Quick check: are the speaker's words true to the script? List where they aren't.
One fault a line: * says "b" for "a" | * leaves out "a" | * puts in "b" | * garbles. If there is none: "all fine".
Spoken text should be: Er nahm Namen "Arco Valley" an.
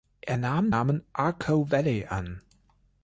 all fine